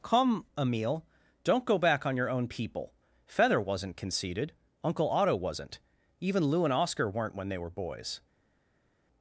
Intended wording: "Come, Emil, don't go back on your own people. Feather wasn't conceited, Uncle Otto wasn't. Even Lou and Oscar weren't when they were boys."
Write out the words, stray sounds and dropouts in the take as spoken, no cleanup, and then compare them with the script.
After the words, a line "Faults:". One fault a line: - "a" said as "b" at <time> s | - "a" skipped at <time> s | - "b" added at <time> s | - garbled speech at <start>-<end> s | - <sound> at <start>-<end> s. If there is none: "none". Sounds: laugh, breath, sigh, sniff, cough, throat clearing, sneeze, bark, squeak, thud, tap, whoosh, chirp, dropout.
"Come, Emil, don't go back on your own people. Feather wasn't conceited, Uncle Otto wasn't. Even Lou and Oscar weren't when they were boys."
Faults:
none